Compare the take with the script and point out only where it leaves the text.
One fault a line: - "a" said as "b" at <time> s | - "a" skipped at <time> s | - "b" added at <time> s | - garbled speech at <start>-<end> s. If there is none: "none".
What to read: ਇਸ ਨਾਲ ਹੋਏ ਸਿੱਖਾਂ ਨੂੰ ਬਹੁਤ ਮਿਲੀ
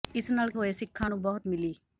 none